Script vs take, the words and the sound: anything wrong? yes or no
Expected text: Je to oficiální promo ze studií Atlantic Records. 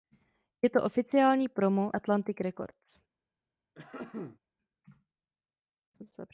yes